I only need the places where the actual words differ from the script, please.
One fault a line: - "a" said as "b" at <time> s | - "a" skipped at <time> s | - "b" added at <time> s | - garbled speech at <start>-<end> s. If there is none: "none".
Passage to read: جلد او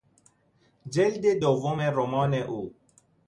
- "دوم رمان" added at 1.4 s